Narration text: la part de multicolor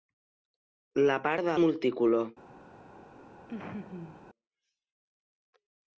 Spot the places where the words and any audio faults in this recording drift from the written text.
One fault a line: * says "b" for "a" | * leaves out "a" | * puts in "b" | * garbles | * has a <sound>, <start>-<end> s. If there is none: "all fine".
* has a laugh, 3.5-4.3 s